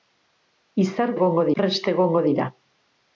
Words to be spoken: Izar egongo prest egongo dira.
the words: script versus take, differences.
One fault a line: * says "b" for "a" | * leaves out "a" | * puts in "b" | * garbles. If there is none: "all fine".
all fine